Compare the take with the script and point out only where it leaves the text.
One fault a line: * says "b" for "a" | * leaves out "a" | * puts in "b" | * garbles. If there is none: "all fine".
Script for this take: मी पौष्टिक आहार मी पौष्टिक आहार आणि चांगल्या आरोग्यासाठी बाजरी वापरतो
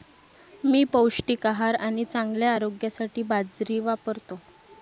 * leaves out "मी पौष्टिक आहार"